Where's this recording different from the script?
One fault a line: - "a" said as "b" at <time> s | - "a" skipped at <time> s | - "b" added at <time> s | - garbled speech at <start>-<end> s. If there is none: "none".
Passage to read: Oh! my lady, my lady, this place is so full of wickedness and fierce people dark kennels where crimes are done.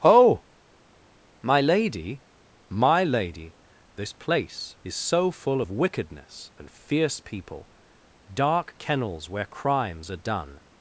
none